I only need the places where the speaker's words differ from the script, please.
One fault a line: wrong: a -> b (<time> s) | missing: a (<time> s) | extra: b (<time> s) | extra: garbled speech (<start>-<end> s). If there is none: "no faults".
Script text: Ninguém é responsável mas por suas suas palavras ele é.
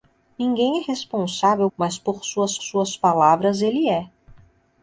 no faults